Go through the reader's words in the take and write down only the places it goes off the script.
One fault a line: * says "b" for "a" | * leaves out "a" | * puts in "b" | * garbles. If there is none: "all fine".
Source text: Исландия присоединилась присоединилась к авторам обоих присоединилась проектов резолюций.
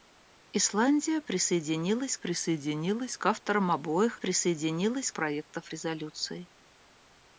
all fine